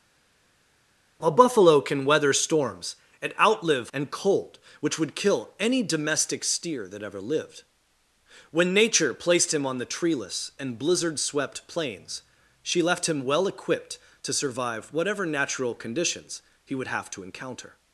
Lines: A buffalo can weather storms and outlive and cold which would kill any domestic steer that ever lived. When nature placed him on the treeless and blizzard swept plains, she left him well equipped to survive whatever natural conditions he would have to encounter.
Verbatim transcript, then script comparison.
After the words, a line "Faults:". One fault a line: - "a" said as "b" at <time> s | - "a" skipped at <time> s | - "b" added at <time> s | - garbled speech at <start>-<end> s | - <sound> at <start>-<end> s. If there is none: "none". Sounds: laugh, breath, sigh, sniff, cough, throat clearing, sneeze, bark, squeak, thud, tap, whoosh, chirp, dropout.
A buffalo can weather storms and outlive and cold which would kill any domestic steer that ever lived. When nature placed him on the treeless and blizzard swept plains, she left him well equipped to survive whatever natural conditions he would have to encounter.
Faults:
none